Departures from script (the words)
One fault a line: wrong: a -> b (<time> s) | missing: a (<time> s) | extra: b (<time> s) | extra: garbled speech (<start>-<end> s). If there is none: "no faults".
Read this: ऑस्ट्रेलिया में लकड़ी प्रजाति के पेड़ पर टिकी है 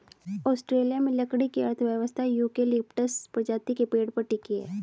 extra: की अर्थव्यवस्था यूकेलिप्टस (1.5 s)